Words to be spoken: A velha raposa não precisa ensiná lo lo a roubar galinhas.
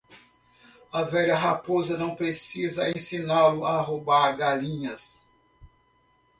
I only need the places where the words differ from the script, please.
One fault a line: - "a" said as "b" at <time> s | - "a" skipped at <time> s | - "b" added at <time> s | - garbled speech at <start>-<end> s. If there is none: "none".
- "lo" skipped at 3.6 s